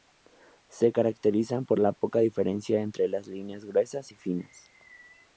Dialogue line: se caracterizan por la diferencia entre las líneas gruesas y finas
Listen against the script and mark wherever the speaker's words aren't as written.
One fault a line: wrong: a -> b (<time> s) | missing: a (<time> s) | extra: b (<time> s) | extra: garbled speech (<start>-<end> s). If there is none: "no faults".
extra: poca (1.9 s)